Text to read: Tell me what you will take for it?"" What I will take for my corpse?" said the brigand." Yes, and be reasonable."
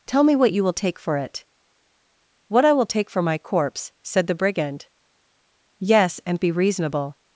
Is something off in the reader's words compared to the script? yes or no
no